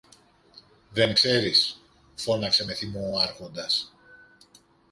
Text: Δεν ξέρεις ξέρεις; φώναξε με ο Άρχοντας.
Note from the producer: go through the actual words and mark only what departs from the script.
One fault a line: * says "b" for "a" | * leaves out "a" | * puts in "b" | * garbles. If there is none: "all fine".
* leaves out "ξέρεις"
* puts in "θυμό"